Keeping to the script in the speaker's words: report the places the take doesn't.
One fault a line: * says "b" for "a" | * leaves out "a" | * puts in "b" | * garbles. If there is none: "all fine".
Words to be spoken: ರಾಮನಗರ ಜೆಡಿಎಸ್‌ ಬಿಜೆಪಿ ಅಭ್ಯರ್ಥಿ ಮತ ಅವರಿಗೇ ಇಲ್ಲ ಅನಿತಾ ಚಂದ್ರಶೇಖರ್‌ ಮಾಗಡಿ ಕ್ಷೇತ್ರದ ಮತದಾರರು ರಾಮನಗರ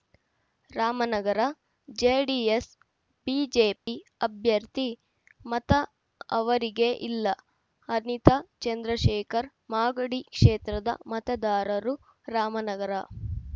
all fine